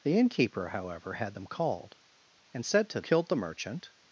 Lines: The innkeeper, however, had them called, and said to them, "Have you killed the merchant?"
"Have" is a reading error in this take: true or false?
true